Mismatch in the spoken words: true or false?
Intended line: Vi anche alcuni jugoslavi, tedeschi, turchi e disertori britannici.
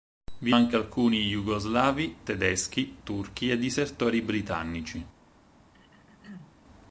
false